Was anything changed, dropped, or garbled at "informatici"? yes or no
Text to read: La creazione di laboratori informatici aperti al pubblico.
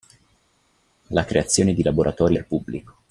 yes